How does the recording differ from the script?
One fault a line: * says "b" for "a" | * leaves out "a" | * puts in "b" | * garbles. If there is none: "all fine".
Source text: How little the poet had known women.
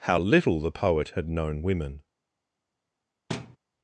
all fine